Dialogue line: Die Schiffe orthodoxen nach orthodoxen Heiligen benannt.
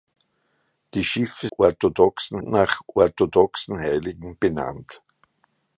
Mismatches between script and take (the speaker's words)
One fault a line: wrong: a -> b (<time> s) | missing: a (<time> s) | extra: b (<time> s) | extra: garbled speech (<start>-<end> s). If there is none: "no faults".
no faults